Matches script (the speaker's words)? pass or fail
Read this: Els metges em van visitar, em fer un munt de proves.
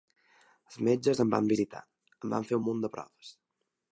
fail